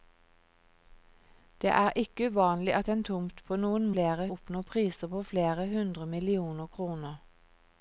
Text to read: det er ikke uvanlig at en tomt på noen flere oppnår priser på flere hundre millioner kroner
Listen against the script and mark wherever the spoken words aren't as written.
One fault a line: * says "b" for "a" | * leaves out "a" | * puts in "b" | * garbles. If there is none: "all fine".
all fine